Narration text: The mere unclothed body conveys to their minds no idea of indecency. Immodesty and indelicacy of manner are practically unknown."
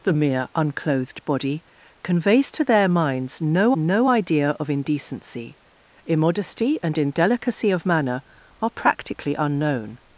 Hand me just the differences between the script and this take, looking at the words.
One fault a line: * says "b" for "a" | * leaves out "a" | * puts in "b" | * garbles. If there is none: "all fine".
* puts in "no"